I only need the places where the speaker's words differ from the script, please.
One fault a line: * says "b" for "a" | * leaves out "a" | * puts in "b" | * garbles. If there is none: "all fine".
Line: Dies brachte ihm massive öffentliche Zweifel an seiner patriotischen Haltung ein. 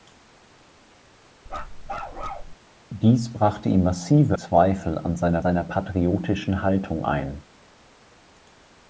* leaves out "öffentliche"
* puts in "seiner"